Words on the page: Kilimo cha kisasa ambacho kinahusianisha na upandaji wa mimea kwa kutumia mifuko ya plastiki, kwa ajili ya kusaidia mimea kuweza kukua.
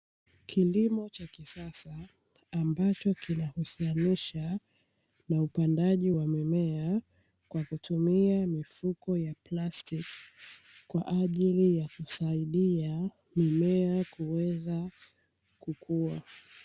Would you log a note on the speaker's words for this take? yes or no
no